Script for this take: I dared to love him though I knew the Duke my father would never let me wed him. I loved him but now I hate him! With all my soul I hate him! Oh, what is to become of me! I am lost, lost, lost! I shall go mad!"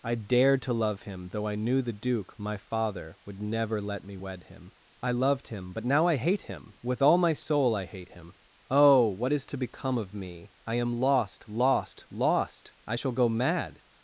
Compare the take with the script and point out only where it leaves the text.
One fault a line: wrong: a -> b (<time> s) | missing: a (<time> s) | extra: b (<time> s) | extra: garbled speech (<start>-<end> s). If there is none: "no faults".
no faults